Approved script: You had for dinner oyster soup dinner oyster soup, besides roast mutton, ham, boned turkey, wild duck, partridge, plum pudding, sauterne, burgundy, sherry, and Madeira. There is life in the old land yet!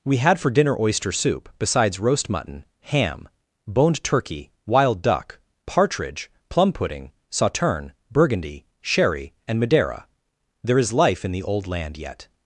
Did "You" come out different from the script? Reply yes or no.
yes